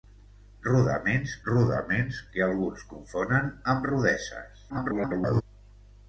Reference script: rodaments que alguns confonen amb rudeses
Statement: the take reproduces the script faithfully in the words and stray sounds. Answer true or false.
false